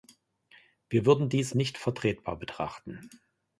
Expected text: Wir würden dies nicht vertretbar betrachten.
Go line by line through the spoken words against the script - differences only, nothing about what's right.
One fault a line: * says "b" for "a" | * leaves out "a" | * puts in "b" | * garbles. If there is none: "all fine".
all fine